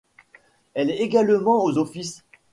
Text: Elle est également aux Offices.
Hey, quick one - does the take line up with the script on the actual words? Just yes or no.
yes